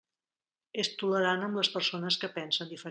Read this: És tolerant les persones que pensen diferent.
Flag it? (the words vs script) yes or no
yes